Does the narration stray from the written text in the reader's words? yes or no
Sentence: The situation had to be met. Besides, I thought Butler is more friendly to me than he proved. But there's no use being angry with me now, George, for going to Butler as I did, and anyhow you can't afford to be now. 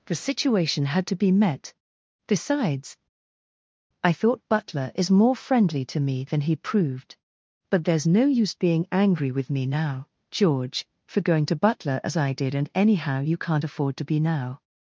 no